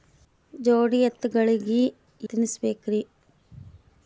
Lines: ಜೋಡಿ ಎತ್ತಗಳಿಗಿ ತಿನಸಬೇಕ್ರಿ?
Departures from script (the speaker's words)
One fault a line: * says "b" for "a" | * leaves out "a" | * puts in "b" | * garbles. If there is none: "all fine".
all fine